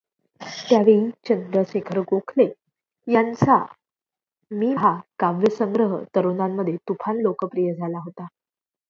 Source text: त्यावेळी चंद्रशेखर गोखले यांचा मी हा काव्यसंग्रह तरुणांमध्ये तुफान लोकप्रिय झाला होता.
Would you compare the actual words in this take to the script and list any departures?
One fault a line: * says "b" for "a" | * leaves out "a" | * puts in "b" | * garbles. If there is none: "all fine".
all fine